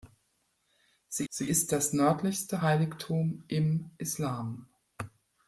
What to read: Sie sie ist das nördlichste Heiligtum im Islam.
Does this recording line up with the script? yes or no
yes